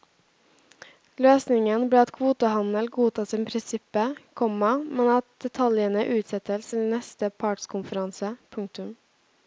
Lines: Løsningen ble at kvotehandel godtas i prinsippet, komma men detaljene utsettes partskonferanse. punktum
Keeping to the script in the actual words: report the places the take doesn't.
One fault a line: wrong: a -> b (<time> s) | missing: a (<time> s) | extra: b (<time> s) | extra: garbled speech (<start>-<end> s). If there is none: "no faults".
extra: at (5.2 s)
extra: til neste (6.7 s)